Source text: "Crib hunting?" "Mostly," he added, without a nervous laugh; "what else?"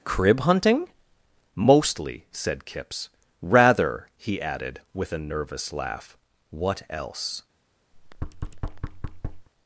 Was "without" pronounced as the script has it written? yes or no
no